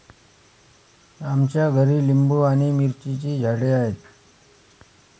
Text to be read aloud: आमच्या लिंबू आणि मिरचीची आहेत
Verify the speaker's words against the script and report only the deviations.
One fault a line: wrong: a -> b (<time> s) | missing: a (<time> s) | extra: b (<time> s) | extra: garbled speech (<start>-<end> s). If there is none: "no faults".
extra: घरी (1.7 s)
extra: झाडे (3.4 s)